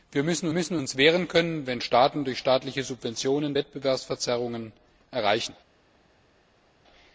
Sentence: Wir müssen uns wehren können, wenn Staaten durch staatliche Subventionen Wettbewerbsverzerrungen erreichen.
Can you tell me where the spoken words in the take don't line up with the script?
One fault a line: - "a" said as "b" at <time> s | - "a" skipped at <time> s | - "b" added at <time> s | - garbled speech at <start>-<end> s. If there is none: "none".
- "müssen" added at 0.5 s